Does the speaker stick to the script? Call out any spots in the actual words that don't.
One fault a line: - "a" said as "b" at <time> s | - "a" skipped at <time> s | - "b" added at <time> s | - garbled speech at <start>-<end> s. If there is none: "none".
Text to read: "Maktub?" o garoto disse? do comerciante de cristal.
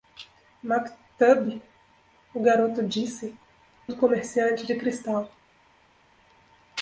none